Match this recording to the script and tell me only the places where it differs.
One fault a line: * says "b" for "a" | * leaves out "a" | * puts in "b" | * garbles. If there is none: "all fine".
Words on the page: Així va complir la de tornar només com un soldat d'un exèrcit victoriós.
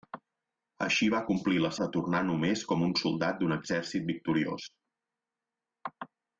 all fine